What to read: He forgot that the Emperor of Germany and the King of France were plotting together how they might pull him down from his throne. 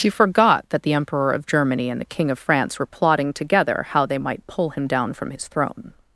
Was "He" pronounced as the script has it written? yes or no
no